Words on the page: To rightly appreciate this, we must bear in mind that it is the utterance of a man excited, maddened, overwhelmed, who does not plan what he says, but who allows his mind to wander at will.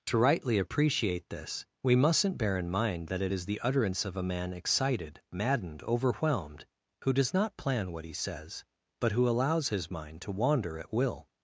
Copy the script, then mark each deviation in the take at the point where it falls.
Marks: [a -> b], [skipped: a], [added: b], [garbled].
To rightly appreciate this, we [must -> mustn't] bear in mind that it is the utterance of a man excited, maddened, overwhelmed, who does not plan what he says, but who allows his mind to wander at will.